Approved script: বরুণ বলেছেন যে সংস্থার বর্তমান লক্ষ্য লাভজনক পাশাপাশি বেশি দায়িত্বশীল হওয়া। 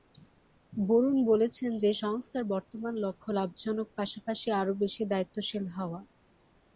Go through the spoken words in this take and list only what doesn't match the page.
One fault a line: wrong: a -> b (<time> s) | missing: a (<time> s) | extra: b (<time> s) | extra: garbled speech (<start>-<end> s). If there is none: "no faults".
extra: আরও (4.6 s)